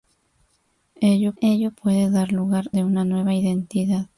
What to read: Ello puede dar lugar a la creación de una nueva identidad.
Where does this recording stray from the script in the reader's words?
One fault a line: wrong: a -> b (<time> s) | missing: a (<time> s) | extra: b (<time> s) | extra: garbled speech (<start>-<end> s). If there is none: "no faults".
extra: ello (1.4 s)
missing: a la creación (2.7 s)